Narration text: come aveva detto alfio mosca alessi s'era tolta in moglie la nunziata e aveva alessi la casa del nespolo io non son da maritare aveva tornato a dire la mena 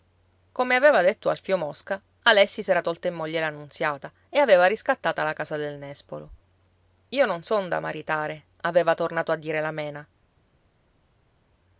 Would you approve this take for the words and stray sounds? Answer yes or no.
no